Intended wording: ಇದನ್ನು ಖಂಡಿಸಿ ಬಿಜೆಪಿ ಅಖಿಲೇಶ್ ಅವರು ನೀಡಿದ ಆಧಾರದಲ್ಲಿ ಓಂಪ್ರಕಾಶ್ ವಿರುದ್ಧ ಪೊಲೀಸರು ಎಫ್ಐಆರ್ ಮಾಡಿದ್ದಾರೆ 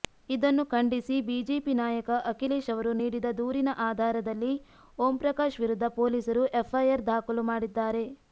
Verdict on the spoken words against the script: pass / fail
fail